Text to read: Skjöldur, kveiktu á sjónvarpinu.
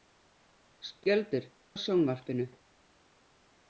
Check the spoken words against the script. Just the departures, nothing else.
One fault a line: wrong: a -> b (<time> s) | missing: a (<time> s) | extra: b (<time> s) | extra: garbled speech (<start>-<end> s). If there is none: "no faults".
missing: kveiktu (1.4 s)